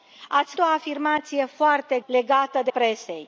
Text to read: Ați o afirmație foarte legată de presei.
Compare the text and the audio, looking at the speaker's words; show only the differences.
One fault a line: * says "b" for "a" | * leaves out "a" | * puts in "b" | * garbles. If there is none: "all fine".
all fine